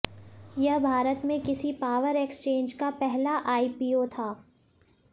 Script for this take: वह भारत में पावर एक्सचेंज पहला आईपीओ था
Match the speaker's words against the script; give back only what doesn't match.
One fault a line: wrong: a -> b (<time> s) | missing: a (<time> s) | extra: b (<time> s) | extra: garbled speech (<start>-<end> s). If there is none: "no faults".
wrong: वह -> यह (0.6 s)
extra: किसी (1.4 s)
extra: का (2.7 s)